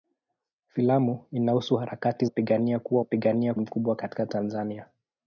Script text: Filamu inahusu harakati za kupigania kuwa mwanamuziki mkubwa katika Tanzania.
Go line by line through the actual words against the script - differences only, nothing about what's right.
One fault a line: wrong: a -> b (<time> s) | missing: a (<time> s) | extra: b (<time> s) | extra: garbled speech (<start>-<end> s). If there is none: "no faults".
missing: za (2.2 s)
wrong: mwanamuziki -> kupigania (3.0 s)